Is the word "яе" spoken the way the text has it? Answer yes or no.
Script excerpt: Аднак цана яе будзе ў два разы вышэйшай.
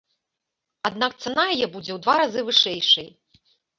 yes